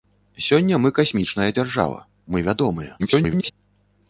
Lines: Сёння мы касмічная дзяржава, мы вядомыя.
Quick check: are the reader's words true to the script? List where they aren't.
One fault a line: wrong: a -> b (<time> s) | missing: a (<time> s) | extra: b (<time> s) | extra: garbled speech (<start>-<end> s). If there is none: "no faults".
extra: garbled speech (3.0-3.5 s)